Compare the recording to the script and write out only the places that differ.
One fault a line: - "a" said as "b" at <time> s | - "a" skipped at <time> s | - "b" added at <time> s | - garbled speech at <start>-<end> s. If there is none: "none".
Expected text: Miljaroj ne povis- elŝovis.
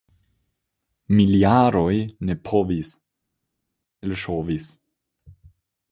none